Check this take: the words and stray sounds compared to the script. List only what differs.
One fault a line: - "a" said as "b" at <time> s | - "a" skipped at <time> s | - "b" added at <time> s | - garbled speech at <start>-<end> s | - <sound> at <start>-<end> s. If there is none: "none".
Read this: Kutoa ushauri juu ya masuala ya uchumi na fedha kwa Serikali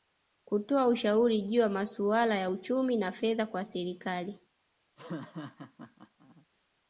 - laugh at 5.0-6.5 s